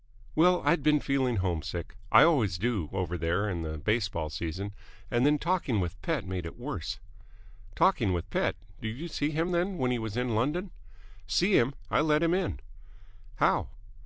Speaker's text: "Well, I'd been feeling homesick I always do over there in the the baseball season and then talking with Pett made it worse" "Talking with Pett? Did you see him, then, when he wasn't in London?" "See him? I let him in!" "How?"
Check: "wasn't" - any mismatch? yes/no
yes